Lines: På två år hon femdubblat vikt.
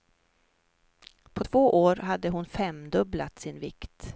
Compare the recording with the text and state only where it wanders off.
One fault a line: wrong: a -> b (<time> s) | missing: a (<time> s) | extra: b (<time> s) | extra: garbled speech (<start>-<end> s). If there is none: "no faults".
extra: hade (1.9 s)
extra: sin (3.4 s)